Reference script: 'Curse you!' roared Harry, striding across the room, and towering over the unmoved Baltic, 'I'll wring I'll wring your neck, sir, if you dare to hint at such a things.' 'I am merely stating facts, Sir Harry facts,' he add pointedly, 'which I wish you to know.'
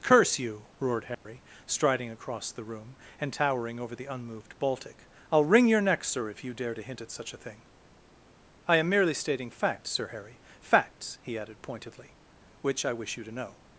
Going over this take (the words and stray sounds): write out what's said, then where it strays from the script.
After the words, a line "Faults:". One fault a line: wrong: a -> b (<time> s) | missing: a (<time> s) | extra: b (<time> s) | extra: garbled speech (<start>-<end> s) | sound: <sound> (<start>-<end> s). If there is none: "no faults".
'Curse you!' roared Harry, striding across the room, and towering over the unmoved Baltic, 'I'll wring your neck, sir, if you dare to hint at such a thing.' 'I am merely stating facts, Sir Harry facts,' he added pointedly, 'which I wish you to know.'
Faults:
sound: dropout (1.1-1.3 s)
missing: I'll wring (5.7 s)
wrong: things -> thing (7.4 s)
wrong: add -> added (11.4 s)